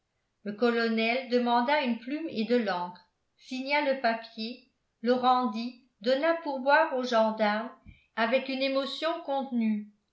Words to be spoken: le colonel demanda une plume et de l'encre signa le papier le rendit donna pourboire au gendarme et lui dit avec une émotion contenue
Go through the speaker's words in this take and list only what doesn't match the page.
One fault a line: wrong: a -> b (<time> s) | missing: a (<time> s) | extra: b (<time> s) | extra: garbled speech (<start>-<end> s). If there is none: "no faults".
missing: et lui dit (7.7 s)